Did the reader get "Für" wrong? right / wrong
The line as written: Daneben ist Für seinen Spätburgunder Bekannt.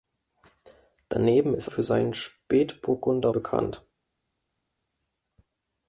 right